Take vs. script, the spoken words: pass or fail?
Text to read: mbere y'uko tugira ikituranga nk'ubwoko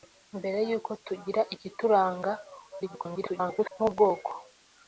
fail